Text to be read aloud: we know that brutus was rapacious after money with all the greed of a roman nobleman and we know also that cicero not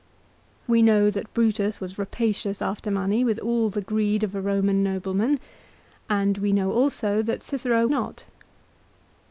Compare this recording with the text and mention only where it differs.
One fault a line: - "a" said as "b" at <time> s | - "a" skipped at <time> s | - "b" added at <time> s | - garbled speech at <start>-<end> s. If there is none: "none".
none